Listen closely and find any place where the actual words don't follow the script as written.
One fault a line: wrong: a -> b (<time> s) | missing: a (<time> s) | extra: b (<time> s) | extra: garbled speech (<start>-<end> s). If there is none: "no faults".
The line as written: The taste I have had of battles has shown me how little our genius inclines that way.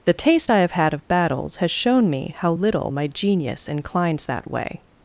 wrong: our -> my (2.9 s)